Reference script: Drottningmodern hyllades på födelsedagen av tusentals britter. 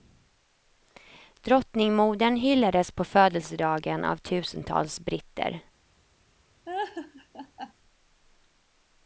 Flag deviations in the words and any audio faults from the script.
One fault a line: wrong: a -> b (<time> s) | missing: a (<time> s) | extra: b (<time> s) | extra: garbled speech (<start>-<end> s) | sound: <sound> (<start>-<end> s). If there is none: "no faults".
sound: laugh (6.7-7.7 s)